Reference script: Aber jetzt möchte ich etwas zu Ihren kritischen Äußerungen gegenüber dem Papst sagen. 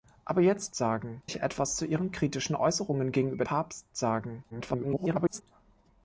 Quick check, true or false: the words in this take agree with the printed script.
false